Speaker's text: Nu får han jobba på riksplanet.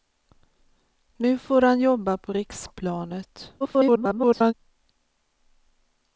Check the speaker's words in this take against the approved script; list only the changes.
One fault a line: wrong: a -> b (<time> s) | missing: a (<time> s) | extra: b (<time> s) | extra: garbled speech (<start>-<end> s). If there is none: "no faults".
extra: garbled speech (3.6-4.5 s)